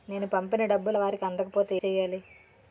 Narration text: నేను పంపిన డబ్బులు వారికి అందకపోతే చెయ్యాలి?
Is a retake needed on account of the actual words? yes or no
no